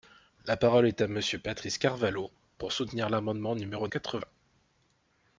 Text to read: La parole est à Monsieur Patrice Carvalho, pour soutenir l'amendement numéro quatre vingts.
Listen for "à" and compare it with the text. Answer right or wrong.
right